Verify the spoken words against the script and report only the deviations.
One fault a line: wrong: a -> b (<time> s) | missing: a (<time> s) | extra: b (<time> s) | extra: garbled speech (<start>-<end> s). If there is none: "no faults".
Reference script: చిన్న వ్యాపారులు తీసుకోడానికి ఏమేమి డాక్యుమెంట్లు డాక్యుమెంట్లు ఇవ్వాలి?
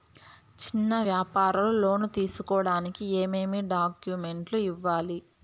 extra: లోను (1.8 s)
missing: డాక్యుమెంట్లు (4.6 s)